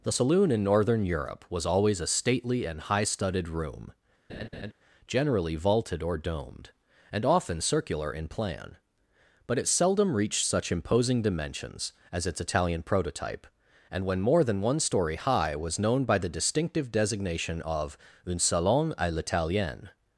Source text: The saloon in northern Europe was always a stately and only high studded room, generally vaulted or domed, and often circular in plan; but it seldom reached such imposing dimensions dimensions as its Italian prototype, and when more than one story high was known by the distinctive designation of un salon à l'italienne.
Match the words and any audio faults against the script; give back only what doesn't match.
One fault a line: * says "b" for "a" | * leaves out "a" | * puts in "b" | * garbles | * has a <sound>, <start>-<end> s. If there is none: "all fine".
* leaves out "only"
* has a laugh, 4.3-4.7 s
* leaves out "dimensions"